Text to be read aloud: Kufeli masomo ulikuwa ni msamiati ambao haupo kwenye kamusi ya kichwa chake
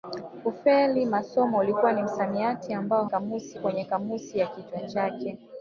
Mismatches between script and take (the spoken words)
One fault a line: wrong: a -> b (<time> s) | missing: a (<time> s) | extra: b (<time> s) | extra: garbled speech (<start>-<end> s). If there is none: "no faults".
wrong: haupo -> kamusi (3.1 s)